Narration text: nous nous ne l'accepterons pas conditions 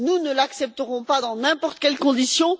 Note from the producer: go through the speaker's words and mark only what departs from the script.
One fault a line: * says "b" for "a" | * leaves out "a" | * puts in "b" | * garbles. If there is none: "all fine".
* leaves out "nous"
* puts in "dans n'importe quelles"